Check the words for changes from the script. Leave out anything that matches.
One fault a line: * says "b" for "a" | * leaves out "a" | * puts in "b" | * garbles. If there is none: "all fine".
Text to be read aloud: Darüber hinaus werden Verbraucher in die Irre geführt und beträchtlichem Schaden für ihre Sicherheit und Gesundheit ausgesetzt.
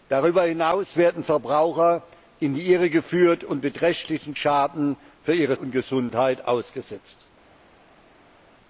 * leaves out "Sicherheit"